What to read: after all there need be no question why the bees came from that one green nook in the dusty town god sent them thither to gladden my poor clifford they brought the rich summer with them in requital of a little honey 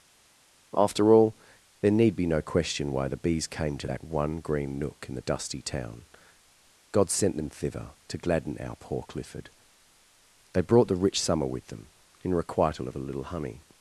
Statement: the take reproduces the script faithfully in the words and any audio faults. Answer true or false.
false